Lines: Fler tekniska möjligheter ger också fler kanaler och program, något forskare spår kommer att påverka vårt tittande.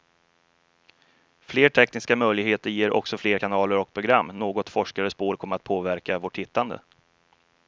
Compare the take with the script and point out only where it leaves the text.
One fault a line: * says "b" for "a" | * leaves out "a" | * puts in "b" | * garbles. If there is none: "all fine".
all fine